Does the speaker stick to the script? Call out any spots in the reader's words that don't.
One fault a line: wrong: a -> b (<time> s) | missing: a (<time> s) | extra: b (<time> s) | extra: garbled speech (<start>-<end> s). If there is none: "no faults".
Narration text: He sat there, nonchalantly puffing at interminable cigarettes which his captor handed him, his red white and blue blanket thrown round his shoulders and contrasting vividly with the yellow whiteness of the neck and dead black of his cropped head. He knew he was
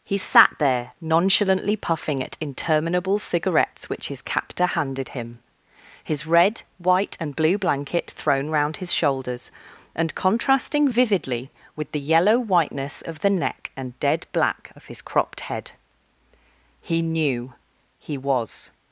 no faults